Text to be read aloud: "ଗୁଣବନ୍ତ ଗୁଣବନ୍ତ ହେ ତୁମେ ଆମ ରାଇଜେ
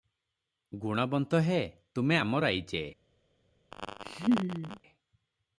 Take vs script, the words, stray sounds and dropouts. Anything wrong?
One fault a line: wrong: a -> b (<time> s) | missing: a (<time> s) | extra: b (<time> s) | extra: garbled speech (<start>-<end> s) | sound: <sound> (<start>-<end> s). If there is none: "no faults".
missing: ଗୁଣବନ୍ତ (1.4 s)
sound: laugh (3.7-4.8 s)